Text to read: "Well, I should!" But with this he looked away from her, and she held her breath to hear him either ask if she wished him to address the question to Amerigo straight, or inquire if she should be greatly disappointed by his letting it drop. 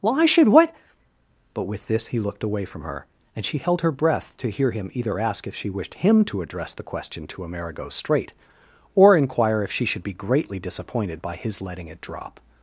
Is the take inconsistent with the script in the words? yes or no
yes